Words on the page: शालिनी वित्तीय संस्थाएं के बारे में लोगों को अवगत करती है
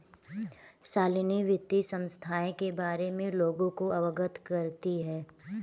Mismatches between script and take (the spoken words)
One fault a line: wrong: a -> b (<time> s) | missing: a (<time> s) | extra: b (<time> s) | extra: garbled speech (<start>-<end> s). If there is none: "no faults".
no faults